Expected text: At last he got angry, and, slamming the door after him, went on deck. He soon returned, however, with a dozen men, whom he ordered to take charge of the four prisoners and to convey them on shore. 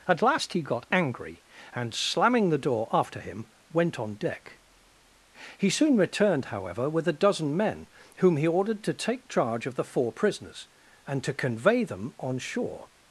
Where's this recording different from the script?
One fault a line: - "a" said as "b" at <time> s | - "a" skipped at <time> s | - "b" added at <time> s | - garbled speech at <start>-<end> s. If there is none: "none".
none